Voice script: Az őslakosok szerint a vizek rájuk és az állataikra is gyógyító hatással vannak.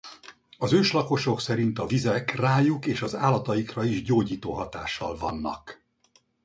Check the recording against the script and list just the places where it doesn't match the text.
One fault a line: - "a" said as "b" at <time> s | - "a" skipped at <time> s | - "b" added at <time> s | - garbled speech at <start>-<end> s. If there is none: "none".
none